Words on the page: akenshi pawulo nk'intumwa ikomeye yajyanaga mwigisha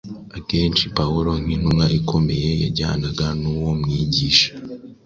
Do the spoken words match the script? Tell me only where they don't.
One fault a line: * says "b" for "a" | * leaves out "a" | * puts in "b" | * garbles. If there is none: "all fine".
* puts in "n'uwo"